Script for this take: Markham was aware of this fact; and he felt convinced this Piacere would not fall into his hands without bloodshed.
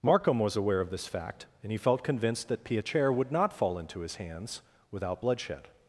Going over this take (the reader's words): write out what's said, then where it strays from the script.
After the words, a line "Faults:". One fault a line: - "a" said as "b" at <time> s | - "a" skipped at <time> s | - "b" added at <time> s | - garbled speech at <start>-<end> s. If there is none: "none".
Markham was aware of this fact; and he felt convinced that Piacere would not fall into his hands without bloodshed.
Faults:
- "this" said as "that" at 2.5 s